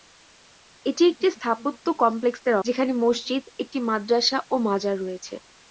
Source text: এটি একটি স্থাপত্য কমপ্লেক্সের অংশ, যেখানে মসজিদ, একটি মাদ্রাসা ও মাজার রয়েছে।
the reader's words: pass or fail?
fail